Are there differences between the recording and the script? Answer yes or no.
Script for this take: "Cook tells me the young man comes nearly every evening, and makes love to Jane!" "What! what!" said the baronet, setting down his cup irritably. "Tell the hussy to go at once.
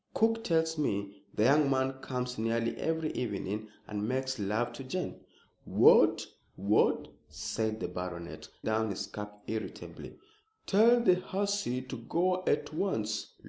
yes